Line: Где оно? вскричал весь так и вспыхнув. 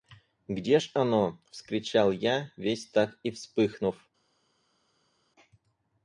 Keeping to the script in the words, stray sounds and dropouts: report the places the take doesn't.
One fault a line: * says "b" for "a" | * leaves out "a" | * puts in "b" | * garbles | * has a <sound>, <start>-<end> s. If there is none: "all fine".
* puts in "ж"
* puts in "я"